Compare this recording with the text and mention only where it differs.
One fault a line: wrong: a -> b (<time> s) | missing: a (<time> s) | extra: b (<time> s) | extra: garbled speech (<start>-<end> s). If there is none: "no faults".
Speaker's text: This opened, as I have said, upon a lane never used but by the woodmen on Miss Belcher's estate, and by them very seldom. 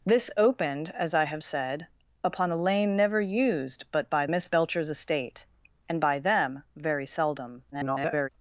missing: the woodmen on (4.3 s)
extra: garbled speech (7.7-8.3 s)